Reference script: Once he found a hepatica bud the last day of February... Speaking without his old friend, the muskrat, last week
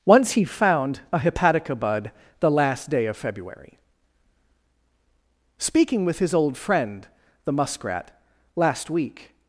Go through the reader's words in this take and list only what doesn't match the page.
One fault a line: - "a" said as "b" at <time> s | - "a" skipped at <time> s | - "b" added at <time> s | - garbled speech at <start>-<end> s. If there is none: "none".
- "without" said as "with" at 6.1 s